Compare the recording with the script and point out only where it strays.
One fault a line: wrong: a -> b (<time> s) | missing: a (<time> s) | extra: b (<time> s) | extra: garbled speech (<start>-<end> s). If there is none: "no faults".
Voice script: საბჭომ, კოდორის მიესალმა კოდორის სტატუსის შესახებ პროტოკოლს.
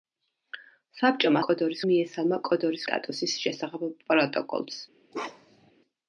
no faults